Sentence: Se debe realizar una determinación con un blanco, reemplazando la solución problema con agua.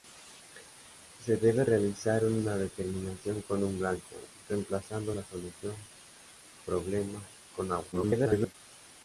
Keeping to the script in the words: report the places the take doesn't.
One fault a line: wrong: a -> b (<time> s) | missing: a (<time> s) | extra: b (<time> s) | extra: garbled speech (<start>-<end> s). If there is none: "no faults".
extra: garbled speech (7.9-8.5 s)